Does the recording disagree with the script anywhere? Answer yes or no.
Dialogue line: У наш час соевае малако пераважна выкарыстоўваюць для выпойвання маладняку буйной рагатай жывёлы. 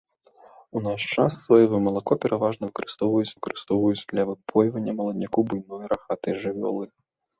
yes